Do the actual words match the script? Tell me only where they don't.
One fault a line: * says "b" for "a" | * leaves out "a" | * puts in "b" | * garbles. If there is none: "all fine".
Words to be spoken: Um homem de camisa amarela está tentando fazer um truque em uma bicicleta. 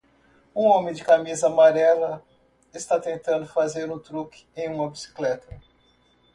all fine